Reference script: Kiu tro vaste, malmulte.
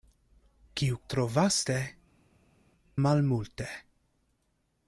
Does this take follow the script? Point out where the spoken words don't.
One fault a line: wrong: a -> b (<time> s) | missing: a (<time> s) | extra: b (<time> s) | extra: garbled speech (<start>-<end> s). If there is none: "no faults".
no faults